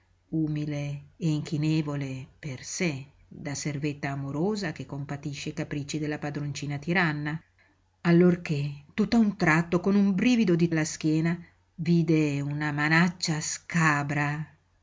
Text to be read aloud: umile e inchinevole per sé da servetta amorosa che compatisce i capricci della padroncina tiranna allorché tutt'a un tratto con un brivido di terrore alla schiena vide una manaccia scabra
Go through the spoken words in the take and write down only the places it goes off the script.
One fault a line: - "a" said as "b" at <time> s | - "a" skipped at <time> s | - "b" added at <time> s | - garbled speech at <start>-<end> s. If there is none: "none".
- "terrore" skipped at 10.7 s